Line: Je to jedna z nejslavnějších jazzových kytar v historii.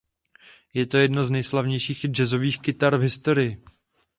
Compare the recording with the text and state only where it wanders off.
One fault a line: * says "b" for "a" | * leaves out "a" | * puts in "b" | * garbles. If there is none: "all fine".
all fine